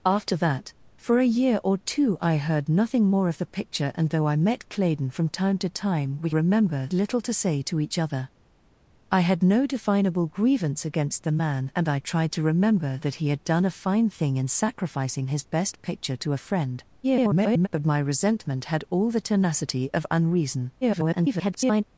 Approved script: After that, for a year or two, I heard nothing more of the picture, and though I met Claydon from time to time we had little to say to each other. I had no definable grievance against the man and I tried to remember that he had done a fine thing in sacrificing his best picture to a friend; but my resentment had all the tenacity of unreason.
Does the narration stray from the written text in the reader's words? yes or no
yes